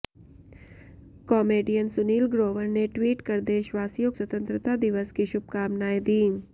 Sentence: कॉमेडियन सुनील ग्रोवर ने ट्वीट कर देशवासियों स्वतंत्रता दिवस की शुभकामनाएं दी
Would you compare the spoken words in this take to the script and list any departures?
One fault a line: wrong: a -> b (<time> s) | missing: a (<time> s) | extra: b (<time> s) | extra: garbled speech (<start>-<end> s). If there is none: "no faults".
no faults